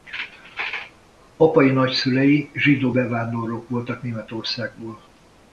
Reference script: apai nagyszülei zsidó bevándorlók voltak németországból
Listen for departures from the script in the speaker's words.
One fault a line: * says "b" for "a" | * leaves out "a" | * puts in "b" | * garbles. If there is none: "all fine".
all fine